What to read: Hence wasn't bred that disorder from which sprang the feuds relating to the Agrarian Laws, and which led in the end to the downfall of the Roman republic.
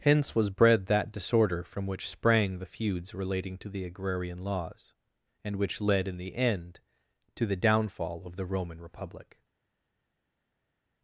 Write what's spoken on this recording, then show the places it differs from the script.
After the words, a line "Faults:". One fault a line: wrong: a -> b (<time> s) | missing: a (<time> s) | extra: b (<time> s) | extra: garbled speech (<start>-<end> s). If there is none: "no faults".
Hence was bred that disorder from which sprang the feuds relating to the Agrarian Laws, and which led in the end to the downfall of the Roman republic.
Faults:
wrong: wasn't -> was (0.3 s)